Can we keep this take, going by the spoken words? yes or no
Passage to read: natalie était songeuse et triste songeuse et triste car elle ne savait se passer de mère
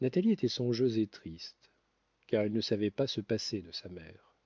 no